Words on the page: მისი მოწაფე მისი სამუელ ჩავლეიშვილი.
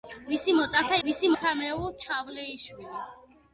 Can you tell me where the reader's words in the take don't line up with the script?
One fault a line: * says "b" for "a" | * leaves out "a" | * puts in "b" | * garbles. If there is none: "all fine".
all fine